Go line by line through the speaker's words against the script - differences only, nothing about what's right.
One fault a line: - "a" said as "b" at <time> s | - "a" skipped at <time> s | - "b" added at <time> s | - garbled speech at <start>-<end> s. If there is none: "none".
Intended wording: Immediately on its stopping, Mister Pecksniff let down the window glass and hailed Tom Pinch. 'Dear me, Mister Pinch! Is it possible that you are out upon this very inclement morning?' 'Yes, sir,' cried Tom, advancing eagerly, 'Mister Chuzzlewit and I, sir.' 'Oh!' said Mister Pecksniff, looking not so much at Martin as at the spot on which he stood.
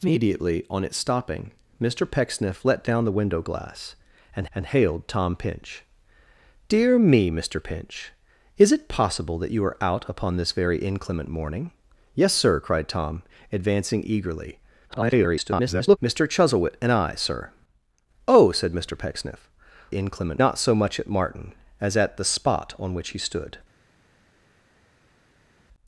- "and" added at 4.5 s
- garbled speech at 14.9-16.0 s
- "looking" said as "inclement" at 19.9 s